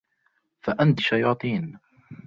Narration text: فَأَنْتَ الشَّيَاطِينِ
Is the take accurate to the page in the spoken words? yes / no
yes